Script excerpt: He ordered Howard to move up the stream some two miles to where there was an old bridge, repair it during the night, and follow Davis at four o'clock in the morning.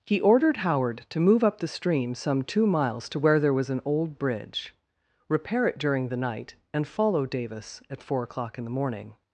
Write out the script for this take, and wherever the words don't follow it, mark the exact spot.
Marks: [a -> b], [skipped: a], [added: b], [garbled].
He ordered Howard to move up the stream some two miles to where there was an old bridge, repair it during the night, and follow Davis at four o'clock in the morning.